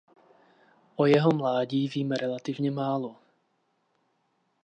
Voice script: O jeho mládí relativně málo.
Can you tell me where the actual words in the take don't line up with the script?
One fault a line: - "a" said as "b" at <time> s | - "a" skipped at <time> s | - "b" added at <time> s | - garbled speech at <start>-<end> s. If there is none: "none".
- "víme" added at 1.9 s